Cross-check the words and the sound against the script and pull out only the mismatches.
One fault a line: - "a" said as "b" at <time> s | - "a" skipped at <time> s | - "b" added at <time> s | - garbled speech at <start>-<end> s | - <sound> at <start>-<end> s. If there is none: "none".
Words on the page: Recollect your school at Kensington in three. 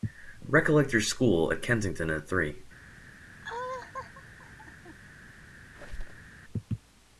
- "in" said as "at" at 2.1 s
- laugh at 3.4-5.0 s
- squeak at 5.7-6.3 s